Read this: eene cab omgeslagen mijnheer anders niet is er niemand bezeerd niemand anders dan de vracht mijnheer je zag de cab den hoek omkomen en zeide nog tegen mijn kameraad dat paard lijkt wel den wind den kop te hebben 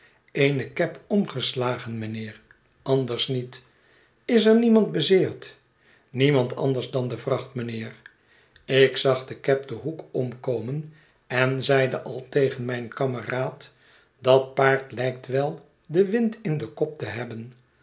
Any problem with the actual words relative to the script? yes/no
yes